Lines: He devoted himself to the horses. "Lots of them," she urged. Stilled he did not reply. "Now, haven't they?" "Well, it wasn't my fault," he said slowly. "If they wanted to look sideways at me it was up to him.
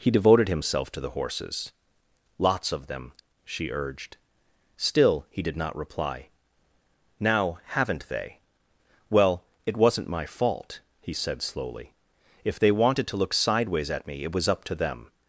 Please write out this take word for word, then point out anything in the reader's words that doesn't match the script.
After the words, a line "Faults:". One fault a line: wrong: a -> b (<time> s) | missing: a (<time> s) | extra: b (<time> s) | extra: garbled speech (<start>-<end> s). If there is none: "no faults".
He devoted himself to the horses. "Lots of them," she urged. Still he did not reply. "Now, haven't they?" "Well, it wasn't my fault," he said slowly. "If they wanted to look sideways at me it was up to them.
Faults:
wrong: Stilled -> Still (4.8 s)
wrong: him -> them (14.7 s)